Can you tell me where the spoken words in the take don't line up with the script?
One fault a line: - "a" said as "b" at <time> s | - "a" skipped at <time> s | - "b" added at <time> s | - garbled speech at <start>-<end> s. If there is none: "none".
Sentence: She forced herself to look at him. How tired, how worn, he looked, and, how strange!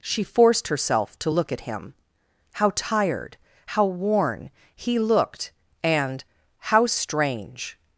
none